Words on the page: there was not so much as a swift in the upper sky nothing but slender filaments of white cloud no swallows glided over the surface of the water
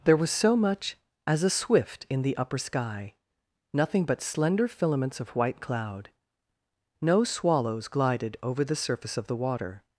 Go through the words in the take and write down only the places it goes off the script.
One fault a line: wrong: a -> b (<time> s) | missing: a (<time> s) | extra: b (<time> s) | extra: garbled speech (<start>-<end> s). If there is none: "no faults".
missing: not (0.3 s)